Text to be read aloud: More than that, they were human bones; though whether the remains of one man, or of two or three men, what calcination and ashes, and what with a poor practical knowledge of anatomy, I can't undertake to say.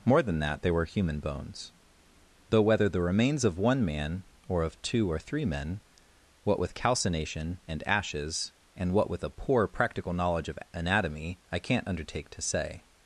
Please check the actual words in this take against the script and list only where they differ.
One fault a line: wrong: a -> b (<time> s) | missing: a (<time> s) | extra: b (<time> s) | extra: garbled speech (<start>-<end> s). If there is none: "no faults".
extra: with (6.6 s)